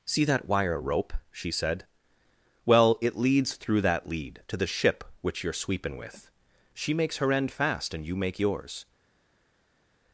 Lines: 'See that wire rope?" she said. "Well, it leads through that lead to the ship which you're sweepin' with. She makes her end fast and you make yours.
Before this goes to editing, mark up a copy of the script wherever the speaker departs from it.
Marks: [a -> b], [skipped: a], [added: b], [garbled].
'See that wire rope?" she said. "Well, it leads through that lead to the ship which you're sweepin' with. She makes her end fast and you make yours.